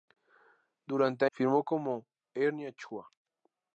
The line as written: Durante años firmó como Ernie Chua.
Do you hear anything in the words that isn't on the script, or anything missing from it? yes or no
yes